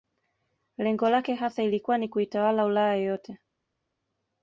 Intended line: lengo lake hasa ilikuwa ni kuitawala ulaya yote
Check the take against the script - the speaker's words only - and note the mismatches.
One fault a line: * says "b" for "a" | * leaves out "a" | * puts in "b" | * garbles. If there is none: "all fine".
all fine